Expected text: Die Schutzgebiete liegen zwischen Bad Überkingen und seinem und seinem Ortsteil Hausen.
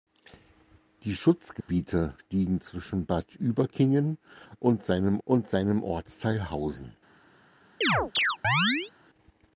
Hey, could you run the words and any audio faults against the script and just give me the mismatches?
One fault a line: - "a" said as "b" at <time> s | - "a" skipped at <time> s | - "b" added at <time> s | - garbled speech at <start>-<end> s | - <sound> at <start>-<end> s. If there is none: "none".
- dropout at 1.6-1.7 s
- chirp at 7.8-8.9 s